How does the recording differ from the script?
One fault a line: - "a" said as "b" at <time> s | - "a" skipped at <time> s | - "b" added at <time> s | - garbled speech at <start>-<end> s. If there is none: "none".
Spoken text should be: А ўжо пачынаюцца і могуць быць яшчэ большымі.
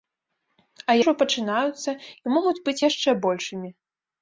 none